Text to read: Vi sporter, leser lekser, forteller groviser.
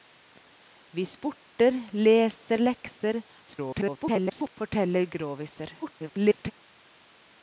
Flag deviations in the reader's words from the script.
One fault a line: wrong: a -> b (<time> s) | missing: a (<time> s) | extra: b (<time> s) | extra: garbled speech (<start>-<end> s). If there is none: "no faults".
extra: garbled speech (3.5-4.5 s)
extra: garbled speech (5.8-6.5 s)